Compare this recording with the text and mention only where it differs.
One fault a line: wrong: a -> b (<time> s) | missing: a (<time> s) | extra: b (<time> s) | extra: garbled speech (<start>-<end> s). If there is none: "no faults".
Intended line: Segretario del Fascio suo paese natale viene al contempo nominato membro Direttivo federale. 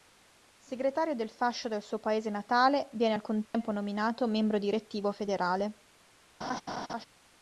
extra: del (1.7 s)